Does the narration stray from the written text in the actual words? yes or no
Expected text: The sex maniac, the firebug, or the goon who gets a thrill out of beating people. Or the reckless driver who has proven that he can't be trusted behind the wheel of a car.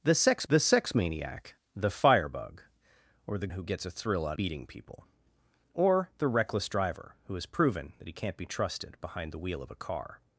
yes